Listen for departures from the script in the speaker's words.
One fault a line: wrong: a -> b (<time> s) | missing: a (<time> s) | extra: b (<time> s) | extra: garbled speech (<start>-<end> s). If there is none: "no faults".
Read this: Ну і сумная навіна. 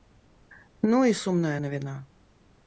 no faults